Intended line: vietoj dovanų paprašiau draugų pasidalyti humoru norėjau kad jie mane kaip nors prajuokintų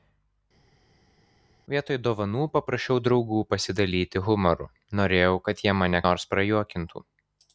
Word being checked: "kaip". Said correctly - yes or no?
no